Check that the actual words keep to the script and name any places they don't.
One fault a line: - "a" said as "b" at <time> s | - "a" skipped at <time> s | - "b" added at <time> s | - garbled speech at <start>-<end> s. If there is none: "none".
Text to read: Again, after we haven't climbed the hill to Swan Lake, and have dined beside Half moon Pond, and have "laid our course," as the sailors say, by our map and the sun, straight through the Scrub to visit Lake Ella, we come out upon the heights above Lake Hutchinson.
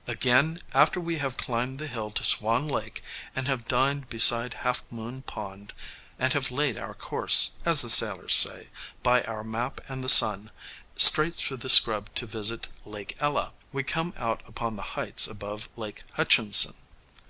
- "haven't" said as "have" at 1.2 s